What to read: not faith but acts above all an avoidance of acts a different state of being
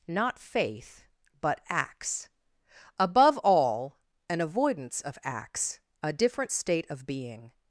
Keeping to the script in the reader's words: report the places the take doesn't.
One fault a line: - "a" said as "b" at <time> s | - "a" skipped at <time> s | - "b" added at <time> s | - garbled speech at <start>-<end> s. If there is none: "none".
none